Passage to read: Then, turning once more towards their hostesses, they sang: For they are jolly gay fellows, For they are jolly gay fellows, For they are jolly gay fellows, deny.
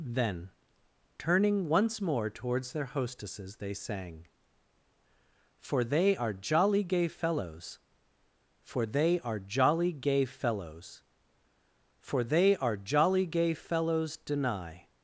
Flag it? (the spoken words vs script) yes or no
no